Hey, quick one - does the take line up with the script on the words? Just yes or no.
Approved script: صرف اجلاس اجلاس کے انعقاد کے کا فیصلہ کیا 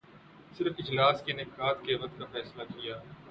no